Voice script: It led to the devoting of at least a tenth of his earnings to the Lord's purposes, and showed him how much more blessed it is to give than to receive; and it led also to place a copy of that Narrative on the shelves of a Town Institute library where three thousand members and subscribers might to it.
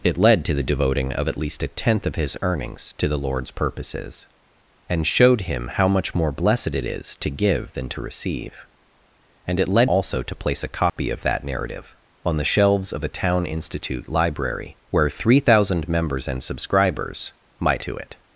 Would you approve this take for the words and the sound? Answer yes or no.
no